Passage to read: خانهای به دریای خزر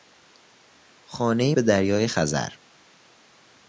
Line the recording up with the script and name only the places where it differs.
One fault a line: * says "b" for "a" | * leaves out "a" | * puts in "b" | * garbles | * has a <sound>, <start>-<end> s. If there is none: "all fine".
all fine